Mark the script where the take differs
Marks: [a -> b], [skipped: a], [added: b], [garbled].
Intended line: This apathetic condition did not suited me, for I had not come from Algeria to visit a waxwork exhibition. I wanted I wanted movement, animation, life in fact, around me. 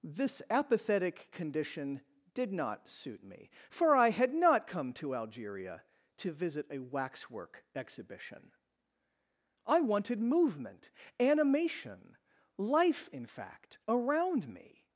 This apathetic condition did not [suited -> suit] me, for I had not come [from -> to] Algeria to visit a waxwork exhibition. I wanted [skipped: I wanted] movement, animation, life in fact, around me.